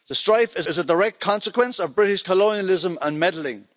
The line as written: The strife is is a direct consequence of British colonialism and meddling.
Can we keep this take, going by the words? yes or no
yes